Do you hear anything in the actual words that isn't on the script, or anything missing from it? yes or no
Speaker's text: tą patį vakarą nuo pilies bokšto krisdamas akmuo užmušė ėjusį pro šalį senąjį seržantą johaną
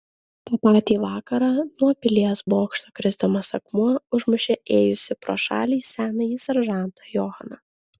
no